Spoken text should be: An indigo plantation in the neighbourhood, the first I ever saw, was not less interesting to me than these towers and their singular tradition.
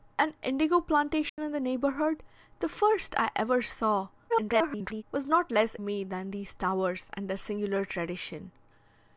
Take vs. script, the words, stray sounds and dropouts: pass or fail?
fail